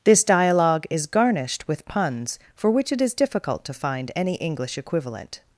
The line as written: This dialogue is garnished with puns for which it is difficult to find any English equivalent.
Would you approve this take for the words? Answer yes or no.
yes